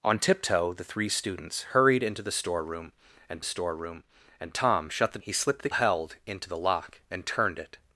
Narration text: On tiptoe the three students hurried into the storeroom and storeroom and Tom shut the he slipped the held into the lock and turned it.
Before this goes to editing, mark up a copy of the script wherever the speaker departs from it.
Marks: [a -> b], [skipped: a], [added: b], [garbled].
On tiptoe the three students hurried into the storeroom and storeroom and Tom shut the he slipped the held into the lock and turned it.